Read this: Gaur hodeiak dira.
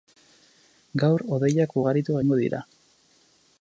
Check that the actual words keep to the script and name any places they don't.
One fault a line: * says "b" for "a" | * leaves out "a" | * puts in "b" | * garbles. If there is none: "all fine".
* puts in "ugaritu egingo"